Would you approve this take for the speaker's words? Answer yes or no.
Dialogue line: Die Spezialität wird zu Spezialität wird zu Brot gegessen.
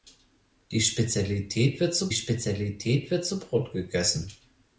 yes